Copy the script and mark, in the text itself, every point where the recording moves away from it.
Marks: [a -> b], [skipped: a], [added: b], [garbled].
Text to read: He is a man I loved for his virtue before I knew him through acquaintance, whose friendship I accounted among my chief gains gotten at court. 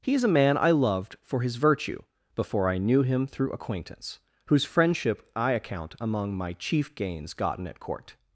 He is a man I loved for his virtue before I knew him through acquaintance, whose friendship I [accounted -> account] among my chief gains gotten at court.